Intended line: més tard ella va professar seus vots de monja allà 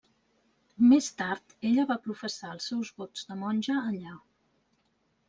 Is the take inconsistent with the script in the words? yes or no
yes